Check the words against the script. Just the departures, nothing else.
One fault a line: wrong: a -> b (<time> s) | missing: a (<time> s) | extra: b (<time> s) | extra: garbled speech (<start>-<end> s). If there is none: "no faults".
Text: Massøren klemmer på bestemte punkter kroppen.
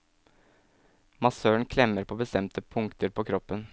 extra: på (3.1 s)